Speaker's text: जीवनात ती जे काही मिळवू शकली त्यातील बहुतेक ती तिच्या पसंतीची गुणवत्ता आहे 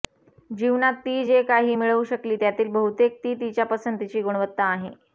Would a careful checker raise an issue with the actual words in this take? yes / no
no